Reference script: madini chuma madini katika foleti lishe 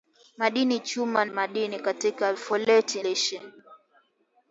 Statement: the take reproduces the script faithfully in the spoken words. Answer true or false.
true